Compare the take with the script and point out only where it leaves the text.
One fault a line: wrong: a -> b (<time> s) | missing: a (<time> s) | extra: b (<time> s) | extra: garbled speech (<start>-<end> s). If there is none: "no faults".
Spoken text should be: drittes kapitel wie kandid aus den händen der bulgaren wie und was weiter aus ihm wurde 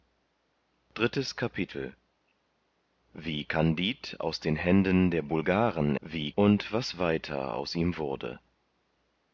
no faults